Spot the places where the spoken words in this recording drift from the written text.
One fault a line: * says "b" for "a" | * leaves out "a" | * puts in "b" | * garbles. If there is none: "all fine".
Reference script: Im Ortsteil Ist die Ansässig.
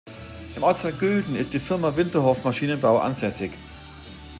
* puts in "Gülden"
* puts in "Firma Winterhoff Maschinenbau"